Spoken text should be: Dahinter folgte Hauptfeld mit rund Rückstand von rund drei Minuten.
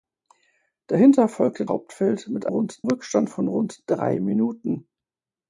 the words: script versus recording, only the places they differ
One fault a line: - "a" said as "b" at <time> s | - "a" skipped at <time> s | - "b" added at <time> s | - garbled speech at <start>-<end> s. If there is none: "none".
none